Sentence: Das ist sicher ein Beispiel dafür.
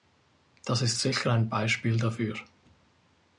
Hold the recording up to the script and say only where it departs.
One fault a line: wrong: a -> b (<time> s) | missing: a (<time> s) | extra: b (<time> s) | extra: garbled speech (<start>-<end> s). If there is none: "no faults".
no faults